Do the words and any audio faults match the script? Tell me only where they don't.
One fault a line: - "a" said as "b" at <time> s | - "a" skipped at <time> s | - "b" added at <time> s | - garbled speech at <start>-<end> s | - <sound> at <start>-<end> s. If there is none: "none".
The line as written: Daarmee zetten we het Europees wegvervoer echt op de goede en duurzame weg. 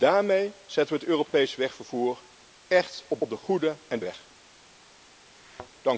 - "op" added at 3.2 s
- "duurzame" skipped at 4.0 s
- thud at 5.4-5.7 s